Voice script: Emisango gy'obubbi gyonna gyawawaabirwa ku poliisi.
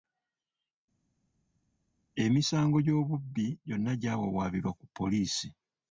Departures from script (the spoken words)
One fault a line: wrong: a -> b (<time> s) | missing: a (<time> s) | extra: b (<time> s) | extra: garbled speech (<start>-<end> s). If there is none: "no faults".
no faults